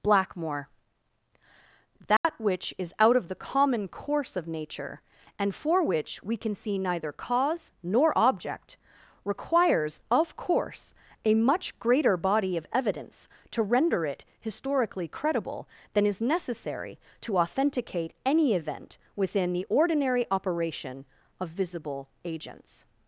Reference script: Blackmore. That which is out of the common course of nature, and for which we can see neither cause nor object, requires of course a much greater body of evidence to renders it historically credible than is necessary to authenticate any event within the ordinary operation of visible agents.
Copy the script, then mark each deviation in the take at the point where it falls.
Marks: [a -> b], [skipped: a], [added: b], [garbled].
Blackmore. That which is out of the common course of nature, and for which we can see neither cause nor object, requires of course a much greater body of evidence to [renders -> render] it historically credible than is necessary to authenticate any event within the ordinary operation of visible agents.